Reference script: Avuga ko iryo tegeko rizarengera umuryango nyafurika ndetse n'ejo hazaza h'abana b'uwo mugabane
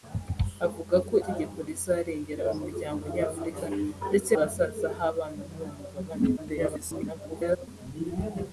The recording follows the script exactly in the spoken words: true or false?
false